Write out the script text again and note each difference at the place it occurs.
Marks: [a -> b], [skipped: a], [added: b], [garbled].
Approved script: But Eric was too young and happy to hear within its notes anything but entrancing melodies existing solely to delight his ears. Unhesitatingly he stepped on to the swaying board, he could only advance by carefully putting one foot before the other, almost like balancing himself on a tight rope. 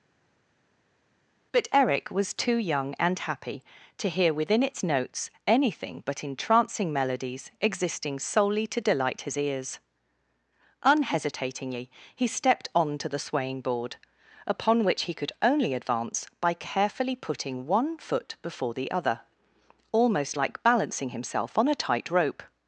But Eric was too young and happy to hear within its notes anything but entrancing melodies existing solely to delight his ears. Unhesitatingly he stepped on to the swaying board, [added: upon which] he could only advance by carefully putting one foot before the other, almost like balancing himself on a tight rope.